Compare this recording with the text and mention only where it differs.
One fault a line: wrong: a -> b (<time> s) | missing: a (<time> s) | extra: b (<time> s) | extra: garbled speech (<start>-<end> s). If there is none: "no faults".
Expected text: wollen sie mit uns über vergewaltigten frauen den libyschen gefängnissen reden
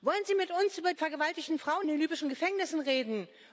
no faults